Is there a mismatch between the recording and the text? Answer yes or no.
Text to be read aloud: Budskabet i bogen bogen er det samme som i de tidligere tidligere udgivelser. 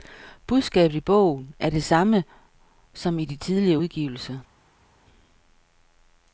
yes